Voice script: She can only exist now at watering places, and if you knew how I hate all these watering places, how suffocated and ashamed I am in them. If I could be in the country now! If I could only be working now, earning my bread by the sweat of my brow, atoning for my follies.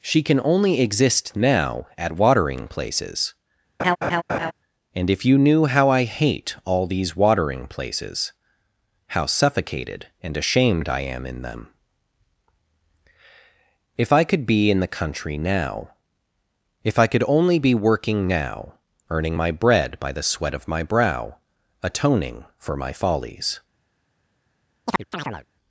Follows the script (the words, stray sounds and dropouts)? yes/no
no